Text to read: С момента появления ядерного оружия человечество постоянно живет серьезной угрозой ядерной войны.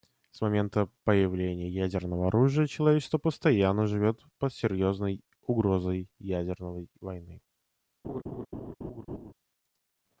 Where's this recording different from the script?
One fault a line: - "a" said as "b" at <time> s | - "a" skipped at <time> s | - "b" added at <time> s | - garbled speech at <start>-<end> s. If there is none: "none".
- "под" added at 4.4 s